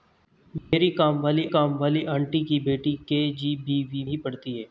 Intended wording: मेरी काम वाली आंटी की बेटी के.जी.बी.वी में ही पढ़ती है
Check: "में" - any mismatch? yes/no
yes